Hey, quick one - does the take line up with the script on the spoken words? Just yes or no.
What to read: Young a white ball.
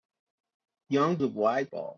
yes